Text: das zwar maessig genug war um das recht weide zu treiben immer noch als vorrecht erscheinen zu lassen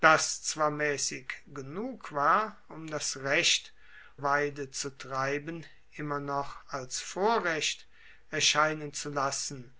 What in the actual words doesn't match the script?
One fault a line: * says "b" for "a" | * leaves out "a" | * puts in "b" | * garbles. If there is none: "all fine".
all fine